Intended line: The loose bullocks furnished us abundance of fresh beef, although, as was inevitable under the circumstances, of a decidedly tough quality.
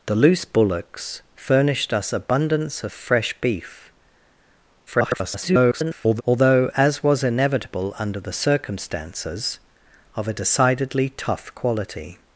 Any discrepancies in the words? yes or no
yes